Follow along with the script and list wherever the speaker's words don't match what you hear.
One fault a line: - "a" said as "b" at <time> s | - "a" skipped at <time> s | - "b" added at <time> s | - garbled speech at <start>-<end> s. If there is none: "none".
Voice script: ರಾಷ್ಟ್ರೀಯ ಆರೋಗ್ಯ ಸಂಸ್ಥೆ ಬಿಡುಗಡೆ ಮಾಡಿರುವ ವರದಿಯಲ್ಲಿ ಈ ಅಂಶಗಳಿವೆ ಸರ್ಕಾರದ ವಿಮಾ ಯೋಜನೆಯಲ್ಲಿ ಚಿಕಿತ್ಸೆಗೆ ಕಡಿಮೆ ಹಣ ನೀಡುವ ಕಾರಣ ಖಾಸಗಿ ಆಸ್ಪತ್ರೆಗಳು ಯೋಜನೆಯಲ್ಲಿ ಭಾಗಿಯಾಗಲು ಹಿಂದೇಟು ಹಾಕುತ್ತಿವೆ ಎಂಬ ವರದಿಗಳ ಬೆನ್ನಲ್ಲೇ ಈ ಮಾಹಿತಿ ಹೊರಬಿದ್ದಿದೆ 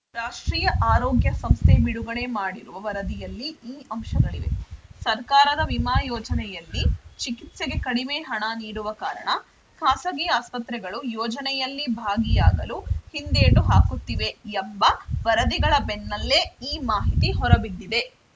none